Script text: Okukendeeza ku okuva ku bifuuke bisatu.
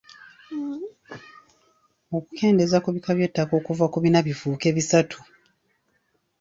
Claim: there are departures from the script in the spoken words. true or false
true